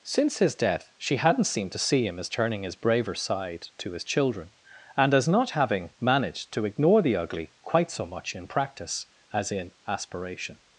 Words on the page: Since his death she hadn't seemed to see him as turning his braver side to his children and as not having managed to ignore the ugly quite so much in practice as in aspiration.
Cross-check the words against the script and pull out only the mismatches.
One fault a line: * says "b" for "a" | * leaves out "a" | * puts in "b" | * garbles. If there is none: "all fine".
all fine